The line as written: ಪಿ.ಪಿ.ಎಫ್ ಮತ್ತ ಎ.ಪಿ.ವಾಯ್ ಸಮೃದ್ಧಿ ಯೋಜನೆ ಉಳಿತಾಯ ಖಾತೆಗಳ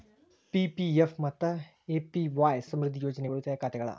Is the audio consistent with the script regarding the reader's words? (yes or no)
yes